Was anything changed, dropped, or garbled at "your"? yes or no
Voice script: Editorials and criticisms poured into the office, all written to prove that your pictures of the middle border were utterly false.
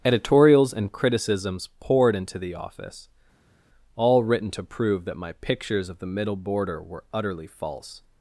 yes